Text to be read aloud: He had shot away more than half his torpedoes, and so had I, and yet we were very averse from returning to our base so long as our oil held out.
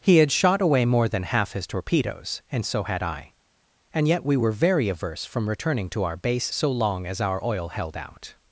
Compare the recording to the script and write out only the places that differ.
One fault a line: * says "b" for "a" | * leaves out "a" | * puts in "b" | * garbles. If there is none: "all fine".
all fine